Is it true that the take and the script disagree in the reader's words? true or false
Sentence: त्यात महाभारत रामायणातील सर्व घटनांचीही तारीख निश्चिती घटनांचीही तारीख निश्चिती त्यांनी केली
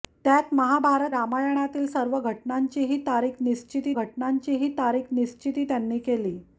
false